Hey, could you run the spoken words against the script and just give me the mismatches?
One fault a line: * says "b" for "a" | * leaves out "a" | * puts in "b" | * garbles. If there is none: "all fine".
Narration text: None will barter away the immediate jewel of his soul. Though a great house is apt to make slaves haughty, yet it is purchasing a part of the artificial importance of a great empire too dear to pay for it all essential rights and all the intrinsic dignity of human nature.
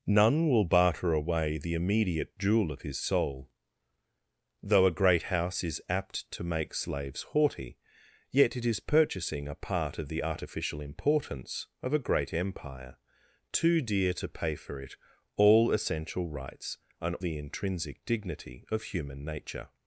* leaves out "all"